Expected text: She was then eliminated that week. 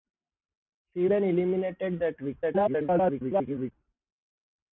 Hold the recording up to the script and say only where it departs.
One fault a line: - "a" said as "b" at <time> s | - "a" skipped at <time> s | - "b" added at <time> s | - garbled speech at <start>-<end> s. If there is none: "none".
- "was" skipped at 1.1 s
- garbled speech at 2.4-3.7 s